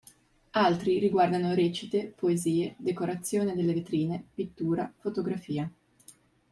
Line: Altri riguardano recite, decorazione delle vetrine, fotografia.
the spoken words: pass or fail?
fail